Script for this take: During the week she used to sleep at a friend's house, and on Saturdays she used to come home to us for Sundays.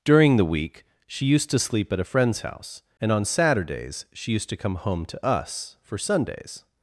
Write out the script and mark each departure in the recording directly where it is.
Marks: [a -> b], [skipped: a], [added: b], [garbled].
During the week she used to sleep at a friend's house, and on Saturdays she used to come home to us for Sundays.